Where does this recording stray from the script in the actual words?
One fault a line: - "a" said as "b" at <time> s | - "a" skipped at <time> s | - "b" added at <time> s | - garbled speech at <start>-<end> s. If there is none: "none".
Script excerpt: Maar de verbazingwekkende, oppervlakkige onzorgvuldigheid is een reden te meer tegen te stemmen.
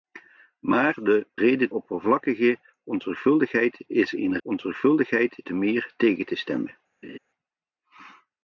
- "verbazingwekkende" said as "reden" at 1.3 s
- "reden" said as "onzorgvuldigheid" at 4.4 s